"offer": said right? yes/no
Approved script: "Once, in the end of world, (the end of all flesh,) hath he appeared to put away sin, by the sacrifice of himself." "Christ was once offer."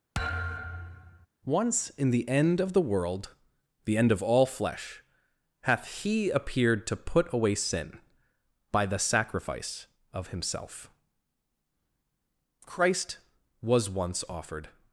no